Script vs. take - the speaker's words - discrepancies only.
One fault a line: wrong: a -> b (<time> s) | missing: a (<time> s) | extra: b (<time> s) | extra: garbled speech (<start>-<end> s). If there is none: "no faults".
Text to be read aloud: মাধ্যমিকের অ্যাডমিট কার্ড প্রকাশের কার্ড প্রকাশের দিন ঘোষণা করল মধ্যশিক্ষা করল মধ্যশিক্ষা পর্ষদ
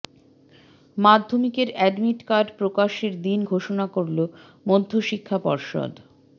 missing: কার্ড প্রকাশের (3.1 s)
missing: করল মধ্যশিক্ষা (5.4 s)